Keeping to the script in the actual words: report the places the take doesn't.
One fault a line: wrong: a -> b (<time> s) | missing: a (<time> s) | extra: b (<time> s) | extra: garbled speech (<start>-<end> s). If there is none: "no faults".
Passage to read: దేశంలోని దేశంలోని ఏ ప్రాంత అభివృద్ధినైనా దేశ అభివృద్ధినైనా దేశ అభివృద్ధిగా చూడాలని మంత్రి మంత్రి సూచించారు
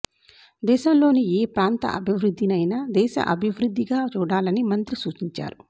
missing: దేశంలోని (1.2 s)
missing: అభివృద్ధినైనా దేశ (3.1 s)
missing: మంత్రి (5.0 s)